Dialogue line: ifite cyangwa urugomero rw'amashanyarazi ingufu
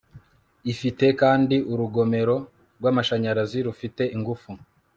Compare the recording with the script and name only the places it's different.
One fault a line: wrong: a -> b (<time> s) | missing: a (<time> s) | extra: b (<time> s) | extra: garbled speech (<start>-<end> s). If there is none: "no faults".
wrong: cyangwa -> kandi (1.2 s)
extra: rufite (3.7 s)